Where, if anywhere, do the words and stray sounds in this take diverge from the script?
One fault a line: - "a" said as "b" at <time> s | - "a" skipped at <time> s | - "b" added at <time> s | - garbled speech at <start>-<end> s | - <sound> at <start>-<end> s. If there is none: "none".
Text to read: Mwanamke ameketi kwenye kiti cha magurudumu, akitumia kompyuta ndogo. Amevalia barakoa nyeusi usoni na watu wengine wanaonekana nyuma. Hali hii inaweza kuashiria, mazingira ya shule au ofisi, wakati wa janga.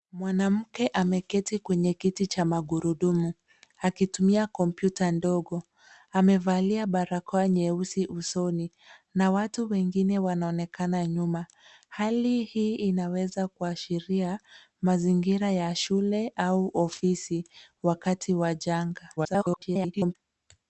- garbled speech at 19.2-20.2 s